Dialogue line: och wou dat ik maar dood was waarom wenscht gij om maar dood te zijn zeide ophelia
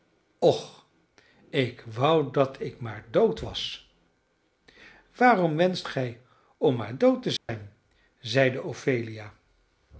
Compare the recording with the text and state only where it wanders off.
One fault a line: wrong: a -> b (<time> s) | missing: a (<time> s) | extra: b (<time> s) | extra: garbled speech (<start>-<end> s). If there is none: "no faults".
extra: ik (1.5 s)